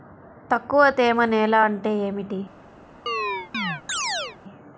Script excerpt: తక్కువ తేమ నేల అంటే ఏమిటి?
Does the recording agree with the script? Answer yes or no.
yes